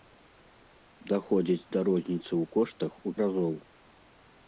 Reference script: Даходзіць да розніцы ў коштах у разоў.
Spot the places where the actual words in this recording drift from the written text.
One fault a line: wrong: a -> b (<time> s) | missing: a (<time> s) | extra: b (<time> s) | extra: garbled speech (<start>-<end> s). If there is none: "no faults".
no faults